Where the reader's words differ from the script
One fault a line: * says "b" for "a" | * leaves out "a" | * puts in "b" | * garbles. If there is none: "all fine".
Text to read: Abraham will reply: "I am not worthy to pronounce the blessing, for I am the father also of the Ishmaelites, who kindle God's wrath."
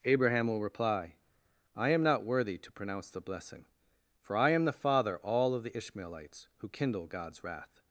* says "all" for "also"